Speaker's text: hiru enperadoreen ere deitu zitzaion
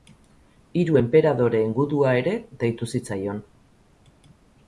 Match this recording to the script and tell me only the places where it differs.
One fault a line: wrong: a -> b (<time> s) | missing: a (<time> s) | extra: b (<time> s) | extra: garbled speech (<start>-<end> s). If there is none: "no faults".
extra: gudua (1.8 s)